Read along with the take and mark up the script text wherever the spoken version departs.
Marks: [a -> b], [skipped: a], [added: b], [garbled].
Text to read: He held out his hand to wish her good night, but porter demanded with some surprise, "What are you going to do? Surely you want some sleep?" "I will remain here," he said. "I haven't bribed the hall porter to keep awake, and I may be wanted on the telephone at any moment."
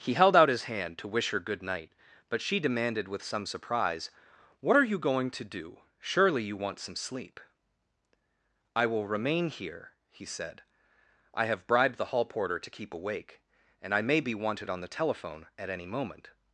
He held out his hand to wish her good night, but [porter -> she] demanded with some surprise, "What are you going to do? Surely you want some sleep?" "I will remain here," he said. "I [haven't -> have] bribed the hall porter to keep awake, and I may be wanted on the telephone at any moment."